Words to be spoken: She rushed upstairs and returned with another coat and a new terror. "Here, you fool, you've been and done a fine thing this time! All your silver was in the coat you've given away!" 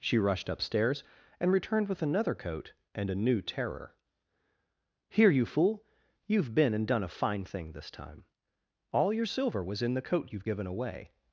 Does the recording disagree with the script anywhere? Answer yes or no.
no